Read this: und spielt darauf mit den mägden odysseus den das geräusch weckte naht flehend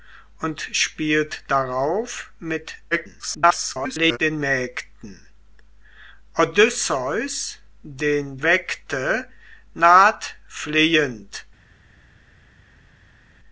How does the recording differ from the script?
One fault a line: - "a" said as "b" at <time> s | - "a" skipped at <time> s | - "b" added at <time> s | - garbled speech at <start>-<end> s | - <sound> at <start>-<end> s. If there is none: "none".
- garbled speech at 2.9-4.2 s
- "das geräusch" skipped at 8.4 s